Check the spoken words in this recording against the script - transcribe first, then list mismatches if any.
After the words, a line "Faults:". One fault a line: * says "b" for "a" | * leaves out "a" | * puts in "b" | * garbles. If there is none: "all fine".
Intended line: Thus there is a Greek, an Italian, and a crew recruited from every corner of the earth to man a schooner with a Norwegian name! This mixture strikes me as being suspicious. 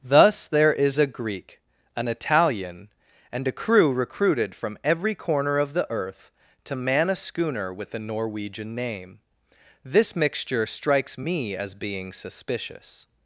Thus there is a Greek, an Italian, and a crew recruited from every corner of the earth to man a schooner with a Norwegian name! This mixture strikes me as being suspicious.
Faults:
all fine